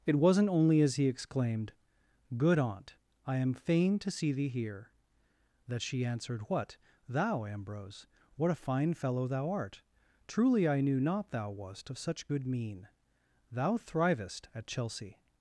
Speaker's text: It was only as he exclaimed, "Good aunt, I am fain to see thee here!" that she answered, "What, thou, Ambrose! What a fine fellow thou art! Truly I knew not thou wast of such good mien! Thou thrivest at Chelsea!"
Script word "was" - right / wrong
wrong